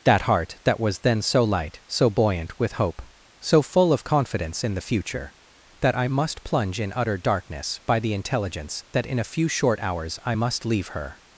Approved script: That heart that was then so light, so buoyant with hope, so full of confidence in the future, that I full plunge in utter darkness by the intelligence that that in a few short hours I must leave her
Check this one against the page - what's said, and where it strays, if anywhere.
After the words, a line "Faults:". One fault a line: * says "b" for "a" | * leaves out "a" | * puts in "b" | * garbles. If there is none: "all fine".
That heart that was then so light, so buoyant with hope, so full of confidence in the future, that I must plunge in utter darkness by the intelligence that in a few short hours I must leave her
Faults:
* says "must" for "full"
* leaves out "that"